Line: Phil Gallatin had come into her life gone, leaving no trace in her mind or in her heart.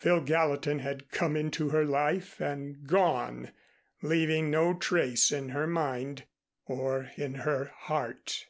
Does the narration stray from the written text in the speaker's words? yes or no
yes